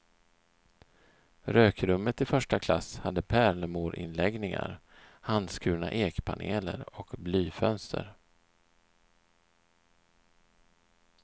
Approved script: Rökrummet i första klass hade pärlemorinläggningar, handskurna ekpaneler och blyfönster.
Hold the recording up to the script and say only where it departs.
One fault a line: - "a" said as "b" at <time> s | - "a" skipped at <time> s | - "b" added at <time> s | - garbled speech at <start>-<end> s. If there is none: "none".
none